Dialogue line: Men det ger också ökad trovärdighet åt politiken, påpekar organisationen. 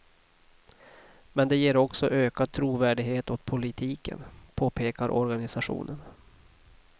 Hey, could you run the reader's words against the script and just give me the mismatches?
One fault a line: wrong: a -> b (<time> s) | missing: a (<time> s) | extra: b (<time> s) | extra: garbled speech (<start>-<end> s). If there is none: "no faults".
no faults